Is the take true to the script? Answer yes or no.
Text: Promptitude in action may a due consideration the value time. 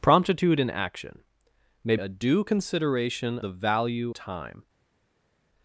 yes